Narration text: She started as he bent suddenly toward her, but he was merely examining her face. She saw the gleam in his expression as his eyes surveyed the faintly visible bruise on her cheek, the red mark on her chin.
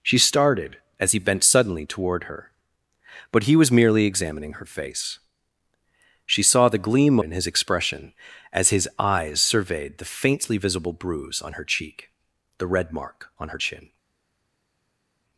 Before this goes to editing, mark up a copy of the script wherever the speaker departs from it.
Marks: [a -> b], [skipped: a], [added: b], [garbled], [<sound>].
She started as he bent suddenly toward her, but he was merely examining her face. She saw the gleam in his expression as his eyes surveyed the faintly visible bruise on her cheek, the red mark on her chin.